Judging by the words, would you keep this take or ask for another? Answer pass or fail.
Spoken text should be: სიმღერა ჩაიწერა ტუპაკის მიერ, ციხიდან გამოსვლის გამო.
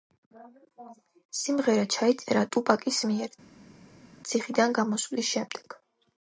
fail